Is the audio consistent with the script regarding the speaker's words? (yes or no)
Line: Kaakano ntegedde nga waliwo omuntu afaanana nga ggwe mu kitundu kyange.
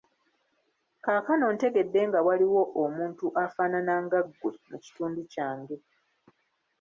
yes